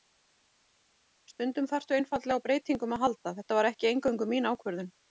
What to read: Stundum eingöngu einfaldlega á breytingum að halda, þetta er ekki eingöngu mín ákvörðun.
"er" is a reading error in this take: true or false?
true